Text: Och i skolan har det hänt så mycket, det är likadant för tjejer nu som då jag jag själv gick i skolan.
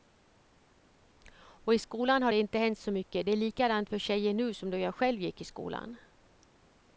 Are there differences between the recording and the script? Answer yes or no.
yes